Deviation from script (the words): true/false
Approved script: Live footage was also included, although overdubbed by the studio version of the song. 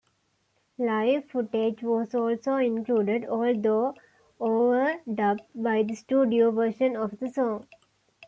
false